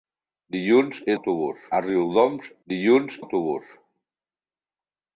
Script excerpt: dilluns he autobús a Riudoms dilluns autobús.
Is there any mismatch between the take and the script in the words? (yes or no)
no